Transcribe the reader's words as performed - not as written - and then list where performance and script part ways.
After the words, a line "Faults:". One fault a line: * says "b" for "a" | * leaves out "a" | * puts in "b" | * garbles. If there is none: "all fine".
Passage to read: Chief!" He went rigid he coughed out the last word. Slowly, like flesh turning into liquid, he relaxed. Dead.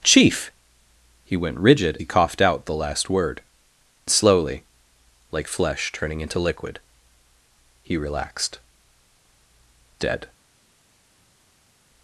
Chief!" He went rigid he coughed out the last word. Slowly, like flesh turning into liquid, he relaxed. Dead.
Faults:
all fine